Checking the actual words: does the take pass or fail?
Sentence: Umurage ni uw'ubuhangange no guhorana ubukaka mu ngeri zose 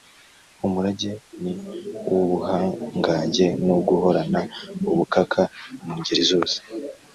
pass